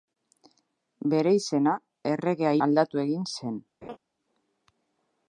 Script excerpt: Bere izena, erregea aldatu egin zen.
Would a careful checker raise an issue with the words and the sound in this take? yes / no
yes